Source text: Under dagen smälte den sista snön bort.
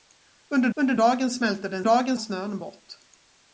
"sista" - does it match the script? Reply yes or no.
no